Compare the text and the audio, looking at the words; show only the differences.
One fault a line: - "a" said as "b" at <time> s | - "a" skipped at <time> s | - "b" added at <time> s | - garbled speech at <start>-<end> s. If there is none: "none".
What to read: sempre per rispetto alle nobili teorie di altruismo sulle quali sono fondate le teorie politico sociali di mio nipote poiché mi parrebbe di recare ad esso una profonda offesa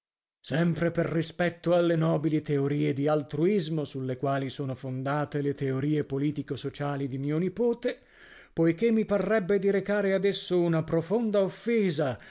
none